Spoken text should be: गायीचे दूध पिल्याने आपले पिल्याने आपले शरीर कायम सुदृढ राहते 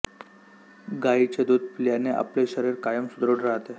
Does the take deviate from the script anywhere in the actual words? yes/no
yes